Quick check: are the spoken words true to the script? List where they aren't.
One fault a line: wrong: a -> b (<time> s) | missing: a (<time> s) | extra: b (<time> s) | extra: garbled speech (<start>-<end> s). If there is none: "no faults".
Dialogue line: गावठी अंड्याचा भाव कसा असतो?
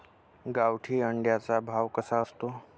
no faults